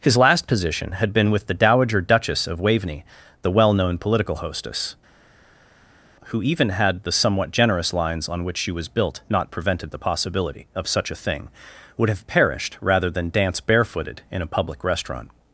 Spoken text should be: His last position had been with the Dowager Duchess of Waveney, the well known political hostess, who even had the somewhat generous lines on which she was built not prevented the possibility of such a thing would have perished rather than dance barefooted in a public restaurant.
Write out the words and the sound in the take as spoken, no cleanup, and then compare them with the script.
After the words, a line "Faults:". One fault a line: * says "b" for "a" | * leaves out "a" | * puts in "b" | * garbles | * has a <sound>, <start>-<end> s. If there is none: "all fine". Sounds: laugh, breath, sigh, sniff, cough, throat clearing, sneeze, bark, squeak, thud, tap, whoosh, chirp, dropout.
His last position had been with the Dowager Duchess of Waveney, the well known political hostess, who even had the somewhat generous lines on which she was built not prevented the possibility of such a thing would have perished rather than dance barefooted in a public restaurant.
Faults:
all fine